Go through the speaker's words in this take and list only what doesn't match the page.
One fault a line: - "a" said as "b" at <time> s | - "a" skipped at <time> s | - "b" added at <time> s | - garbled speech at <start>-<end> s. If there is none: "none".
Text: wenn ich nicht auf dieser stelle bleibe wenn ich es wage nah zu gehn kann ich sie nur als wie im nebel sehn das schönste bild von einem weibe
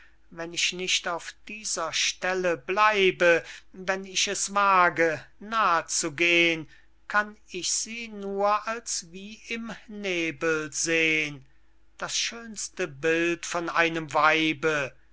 none